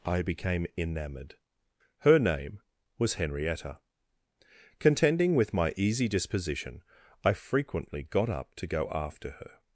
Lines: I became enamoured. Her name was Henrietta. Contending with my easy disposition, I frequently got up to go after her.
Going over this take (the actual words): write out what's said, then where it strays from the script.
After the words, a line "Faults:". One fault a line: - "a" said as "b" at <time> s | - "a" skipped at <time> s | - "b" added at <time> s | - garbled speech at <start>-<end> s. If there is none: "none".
I became enamoured. Her name was Henrietta. Contending with my easy disposition, I frequently got up to go after her.
Faults:
none